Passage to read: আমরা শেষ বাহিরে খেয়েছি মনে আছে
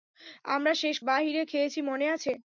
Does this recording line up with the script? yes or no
yes